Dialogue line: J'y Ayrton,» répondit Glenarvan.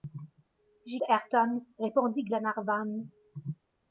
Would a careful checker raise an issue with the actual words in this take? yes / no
no